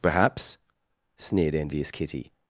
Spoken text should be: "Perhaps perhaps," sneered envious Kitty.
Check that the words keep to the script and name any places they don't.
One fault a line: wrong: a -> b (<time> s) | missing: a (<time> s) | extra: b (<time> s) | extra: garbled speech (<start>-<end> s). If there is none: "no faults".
missing: perhaps (0.6 s)